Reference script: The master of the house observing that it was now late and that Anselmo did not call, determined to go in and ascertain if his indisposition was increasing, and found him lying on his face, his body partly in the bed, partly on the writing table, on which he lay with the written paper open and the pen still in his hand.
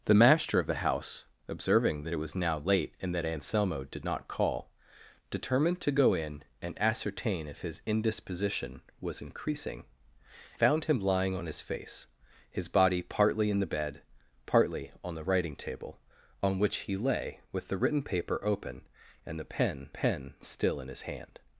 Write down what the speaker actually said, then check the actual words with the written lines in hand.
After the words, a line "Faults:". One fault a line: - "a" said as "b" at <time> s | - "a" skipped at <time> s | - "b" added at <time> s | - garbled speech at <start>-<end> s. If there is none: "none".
The master of the house observing that it was now late and that Anselmo did not call, determined to go in and ascertain if his indisposition was increasing, found him lying on his face, his body partly in the bed, partly on the writing table, on which he lay with the written paper open and the pen pen still in his hand.
Faults:
- "and" skipped at 9.8 s
- "pen" added at 19.9 s